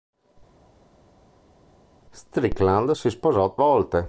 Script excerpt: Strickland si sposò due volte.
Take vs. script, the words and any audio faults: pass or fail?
fail